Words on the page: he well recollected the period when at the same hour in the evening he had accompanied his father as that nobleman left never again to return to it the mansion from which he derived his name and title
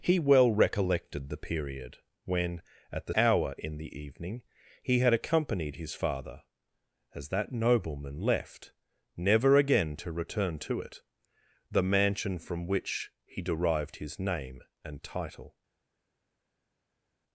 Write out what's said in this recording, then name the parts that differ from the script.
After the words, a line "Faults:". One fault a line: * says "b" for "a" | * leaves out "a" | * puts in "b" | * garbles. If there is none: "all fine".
he well recollected the period when at the hour in the evening he had accompanied his father as that nobleman left never again to return to it the mansion from which he derived his name and title
Faults:
* leaves out "same"